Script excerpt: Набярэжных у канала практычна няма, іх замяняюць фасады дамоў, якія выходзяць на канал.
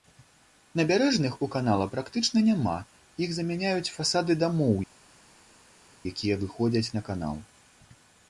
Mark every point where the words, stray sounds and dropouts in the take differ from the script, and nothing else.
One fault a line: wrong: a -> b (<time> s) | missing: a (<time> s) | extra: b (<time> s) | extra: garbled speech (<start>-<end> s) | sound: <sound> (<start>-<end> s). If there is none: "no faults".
no faults